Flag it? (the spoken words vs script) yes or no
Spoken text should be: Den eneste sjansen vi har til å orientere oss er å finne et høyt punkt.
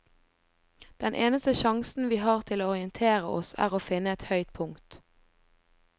no